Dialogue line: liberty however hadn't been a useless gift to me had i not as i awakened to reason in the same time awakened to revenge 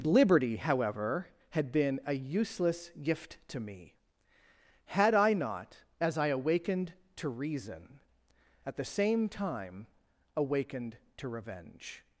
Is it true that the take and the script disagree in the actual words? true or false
true